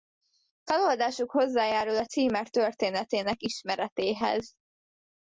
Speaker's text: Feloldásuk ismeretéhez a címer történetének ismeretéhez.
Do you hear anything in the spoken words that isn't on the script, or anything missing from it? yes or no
yes